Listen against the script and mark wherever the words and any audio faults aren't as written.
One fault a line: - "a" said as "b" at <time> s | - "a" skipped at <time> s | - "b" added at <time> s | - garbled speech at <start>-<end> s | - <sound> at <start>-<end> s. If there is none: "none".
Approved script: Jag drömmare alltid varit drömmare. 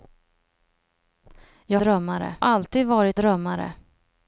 none